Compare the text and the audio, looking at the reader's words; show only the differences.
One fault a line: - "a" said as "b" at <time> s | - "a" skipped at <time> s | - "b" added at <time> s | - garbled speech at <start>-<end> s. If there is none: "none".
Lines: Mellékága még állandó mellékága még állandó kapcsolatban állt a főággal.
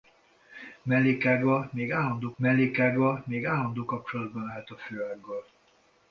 none